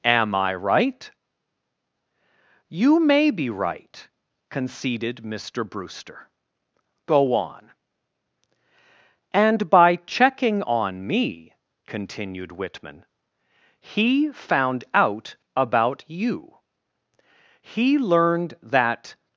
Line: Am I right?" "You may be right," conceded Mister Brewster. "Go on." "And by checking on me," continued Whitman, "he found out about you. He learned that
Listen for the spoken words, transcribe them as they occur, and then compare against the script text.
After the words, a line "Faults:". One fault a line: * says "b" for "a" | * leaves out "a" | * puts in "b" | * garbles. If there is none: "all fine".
Am I right?" "You may be right," conceded Mister Brewster. "Go on." "And by checking on me," continued Whitman, "he found out about you. He learned that
Faults:
all fine